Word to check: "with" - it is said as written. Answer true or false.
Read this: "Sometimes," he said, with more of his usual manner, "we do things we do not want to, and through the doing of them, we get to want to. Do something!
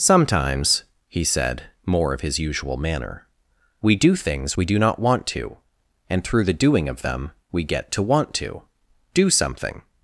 false